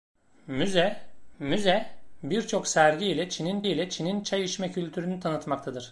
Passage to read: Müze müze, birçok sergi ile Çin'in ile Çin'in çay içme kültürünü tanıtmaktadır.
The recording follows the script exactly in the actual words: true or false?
true